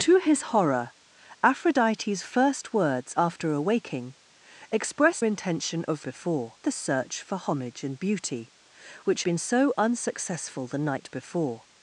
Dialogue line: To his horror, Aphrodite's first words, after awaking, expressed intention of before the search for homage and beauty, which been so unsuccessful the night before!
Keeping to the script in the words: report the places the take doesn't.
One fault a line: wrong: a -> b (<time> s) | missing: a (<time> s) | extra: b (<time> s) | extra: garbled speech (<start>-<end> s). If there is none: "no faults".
no faults